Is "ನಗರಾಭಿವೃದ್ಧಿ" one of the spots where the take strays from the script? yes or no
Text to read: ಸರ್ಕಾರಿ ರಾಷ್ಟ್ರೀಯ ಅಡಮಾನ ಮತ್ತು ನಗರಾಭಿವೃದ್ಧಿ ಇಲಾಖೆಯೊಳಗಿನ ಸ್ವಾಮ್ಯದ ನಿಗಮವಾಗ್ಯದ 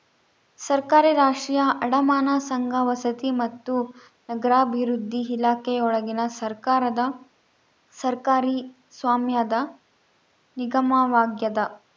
no